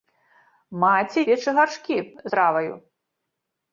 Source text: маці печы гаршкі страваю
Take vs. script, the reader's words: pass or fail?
pass